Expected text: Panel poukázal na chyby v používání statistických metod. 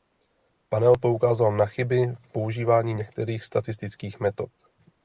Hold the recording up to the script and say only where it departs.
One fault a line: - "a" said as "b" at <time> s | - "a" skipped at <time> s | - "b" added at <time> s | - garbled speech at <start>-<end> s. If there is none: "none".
- "některých" added at 2.9 s